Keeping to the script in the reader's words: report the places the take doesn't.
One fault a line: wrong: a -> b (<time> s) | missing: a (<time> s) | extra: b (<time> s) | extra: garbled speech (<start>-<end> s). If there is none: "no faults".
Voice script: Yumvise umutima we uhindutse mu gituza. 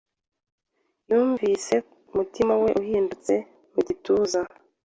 no faults